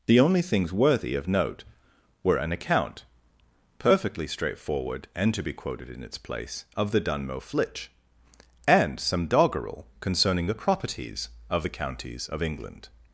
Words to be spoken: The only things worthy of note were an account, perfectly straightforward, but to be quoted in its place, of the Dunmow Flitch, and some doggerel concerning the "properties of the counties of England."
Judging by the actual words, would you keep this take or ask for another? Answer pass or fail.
fail